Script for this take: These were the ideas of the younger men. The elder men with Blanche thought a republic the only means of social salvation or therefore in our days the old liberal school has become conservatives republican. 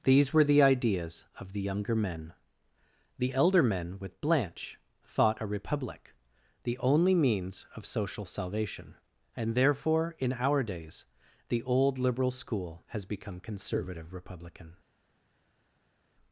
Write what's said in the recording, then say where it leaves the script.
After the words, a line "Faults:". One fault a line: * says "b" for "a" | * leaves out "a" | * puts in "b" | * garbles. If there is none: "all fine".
These were the ideas of the younger men. The elder men with Blanche thought a republic the only means of social salvation and therefore in our days the old liberal school has become conservative republican.
Faults:
* says "and" for "or"
* says "conservative" for "conservatives"